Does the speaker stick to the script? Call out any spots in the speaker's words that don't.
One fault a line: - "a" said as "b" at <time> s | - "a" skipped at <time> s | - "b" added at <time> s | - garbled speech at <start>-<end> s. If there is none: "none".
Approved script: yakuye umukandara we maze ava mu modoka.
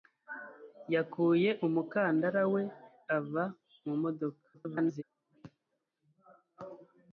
- "maze" skipped at 2.6 s
- garbled speech at 4.5-5.0 s